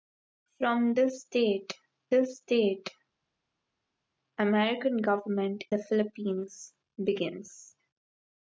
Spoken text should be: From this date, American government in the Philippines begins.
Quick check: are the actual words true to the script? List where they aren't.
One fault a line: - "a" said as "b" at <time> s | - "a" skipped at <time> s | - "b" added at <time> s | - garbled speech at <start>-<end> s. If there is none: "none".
- "this date" added at 2.1 s
- "in" skipped at 5.6 s